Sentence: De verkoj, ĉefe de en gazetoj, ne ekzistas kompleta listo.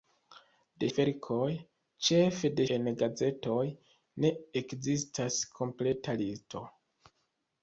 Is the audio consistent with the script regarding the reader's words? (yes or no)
yes